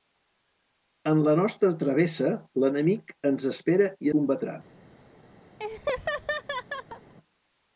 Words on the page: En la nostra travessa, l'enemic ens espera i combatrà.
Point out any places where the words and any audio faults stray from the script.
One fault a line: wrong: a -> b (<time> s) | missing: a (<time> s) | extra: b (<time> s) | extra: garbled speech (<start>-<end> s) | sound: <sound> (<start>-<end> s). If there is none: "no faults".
sound: laugh (5.6-7.1 s)